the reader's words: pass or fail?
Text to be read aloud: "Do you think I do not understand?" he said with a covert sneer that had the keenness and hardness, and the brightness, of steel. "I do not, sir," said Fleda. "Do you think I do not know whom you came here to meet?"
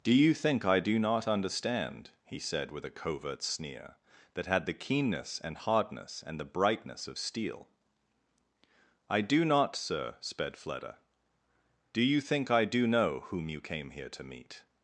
fail